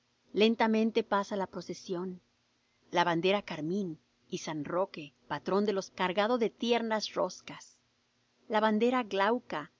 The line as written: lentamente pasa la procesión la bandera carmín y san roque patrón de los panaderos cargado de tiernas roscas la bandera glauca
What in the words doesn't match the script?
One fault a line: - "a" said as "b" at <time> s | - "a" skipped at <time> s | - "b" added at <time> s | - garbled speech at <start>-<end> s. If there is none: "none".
- "panaderos" skipped at 5.9 s